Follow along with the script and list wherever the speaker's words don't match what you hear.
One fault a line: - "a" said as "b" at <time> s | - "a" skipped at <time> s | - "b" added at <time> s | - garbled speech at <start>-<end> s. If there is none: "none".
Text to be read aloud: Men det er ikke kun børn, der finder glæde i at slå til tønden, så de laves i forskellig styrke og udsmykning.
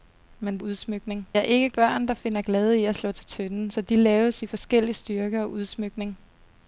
- "det" said as "udsmykning" at 0.6 s
- "kun" skipped at 1.7 s